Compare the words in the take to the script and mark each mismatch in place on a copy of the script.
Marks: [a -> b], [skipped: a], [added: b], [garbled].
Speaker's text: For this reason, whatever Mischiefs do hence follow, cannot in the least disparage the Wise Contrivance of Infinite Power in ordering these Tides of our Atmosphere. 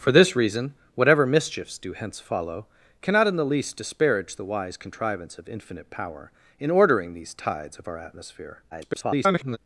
For this reason, whatever Mischiefs do hence follow, cannot in the least disparage the Wise Contrivance of Infinite Power in ordering these Tides of our Atmosphere. [garbled]